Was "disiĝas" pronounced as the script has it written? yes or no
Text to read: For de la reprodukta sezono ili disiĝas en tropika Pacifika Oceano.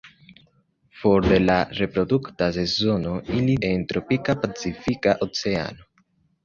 no